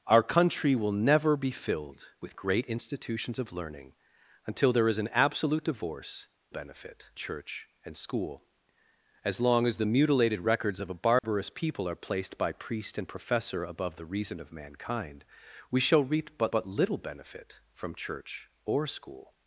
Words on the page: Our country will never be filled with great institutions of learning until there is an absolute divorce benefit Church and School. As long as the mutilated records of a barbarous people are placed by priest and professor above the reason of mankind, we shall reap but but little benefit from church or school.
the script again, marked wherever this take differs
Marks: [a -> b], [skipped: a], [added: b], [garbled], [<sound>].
Our country will never be filled with great institutions of learning until there is an absolute divorce benefit Church and School. As long as the mutilated records of a barbarous [dropout] people are placed by priest and professor above the reason of mankind, we shall reap but but little benefit from church or school.